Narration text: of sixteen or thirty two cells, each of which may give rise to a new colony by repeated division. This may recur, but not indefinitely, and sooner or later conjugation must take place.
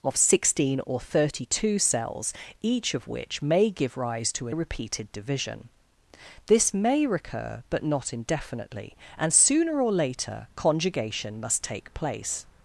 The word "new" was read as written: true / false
false